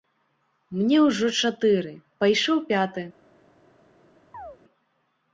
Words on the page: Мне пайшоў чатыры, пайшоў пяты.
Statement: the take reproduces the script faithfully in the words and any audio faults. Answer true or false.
false